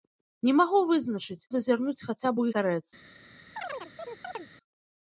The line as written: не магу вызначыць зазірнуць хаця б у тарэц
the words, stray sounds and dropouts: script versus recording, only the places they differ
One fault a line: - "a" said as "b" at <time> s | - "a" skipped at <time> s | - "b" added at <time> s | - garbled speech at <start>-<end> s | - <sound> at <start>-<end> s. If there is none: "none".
- chirp at 3.6-4.5 s